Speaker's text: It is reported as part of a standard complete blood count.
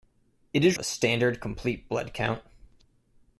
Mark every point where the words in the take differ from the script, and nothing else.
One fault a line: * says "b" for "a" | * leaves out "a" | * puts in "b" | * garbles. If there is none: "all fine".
* leaves out "reported as part"